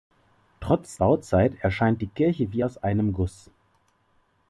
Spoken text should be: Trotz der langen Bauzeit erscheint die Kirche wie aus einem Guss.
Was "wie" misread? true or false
false